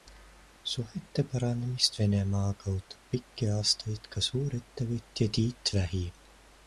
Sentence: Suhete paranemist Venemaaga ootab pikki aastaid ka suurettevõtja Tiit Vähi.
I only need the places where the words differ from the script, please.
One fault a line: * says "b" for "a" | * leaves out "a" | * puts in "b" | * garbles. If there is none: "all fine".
all fine